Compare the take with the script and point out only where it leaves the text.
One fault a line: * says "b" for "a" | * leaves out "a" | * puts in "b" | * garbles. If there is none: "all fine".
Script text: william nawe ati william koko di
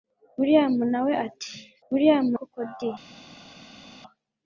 all fine